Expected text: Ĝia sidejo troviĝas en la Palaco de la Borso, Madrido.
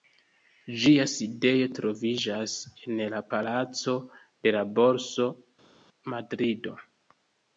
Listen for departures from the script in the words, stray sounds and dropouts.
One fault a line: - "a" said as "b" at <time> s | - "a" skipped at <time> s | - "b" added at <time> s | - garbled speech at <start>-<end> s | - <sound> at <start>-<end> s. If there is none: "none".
none